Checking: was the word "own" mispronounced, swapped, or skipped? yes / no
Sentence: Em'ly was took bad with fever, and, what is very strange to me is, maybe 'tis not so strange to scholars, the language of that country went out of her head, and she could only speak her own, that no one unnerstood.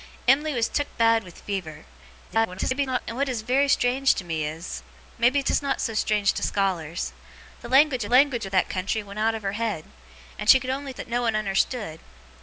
yes